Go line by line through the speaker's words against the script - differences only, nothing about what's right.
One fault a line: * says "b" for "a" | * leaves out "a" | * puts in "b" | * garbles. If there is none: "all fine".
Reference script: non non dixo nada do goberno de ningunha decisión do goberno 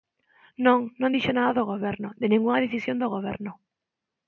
all fine